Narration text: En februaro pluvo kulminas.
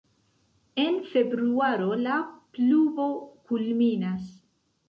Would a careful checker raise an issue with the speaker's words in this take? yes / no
yes